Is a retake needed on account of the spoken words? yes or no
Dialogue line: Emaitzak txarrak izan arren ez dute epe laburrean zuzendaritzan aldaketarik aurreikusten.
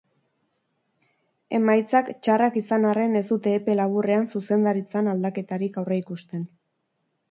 no